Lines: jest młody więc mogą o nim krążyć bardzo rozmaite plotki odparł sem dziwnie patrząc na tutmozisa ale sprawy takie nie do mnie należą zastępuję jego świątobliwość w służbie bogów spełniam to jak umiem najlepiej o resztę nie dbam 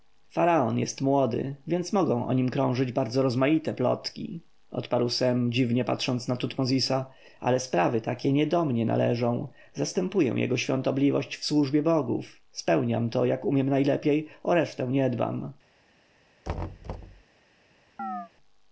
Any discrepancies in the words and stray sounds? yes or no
yes